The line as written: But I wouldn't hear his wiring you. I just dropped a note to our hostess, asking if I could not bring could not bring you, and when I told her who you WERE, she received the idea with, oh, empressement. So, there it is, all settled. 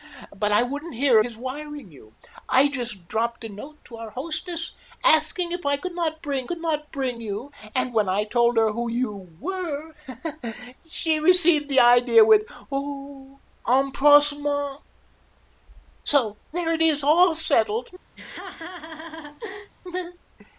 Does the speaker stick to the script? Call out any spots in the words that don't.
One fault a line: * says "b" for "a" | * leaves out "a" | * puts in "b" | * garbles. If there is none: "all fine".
all fine